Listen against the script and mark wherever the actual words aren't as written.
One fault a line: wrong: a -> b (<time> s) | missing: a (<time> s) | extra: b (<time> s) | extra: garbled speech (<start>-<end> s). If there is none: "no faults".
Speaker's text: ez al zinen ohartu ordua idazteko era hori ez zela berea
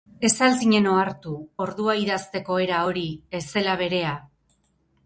no faults